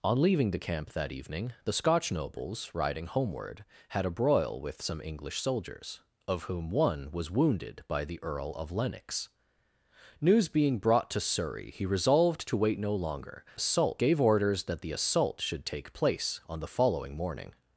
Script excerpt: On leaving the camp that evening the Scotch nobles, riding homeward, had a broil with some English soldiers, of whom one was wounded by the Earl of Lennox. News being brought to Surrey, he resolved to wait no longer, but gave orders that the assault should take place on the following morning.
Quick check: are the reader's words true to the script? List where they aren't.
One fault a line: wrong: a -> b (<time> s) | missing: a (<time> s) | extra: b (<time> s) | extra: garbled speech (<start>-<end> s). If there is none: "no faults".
wrong: but -> assault (13.5 s)